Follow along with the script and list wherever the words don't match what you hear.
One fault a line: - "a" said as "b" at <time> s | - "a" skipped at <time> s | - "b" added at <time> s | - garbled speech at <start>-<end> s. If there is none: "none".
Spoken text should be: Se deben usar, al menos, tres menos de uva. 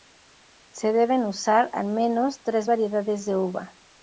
- "menos" said as "variedades" at 2.7 s